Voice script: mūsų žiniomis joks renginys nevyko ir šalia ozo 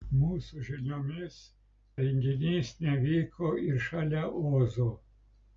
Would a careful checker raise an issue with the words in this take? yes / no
yes